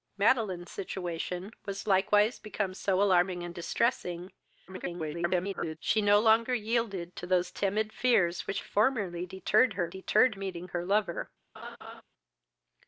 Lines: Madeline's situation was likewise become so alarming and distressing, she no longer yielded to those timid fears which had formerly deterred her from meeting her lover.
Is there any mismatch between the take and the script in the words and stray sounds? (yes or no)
yes